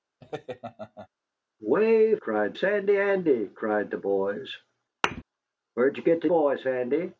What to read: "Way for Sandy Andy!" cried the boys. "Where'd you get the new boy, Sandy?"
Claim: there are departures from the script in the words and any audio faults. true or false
true